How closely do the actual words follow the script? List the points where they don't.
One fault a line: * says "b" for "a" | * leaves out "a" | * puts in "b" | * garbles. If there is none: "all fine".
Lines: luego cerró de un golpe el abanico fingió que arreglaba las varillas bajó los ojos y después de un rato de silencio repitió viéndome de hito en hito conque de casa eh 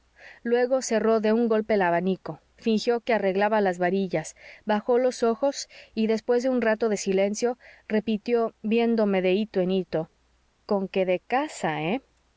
all fine